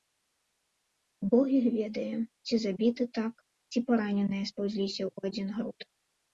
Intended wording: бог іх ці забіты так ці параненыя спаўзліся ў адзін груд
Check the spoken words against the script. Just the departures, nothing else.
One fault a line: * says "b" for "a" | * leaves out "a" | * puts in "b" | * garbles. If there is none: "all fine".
* puts in "ведае"